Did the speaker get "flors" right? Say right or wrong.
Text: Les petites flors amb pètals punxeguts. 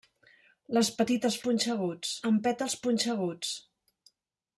wrong